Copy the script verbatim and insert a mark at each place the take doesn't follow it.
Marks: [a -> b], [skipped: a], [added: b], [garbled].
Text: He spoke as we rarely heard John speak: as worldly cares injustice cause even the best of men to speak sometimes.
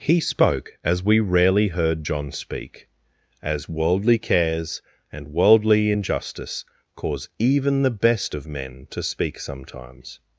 He spoke as we rarely heard John speak: as worldly cares [added: and worldly] injustice cause even the best of men to speak sometimes.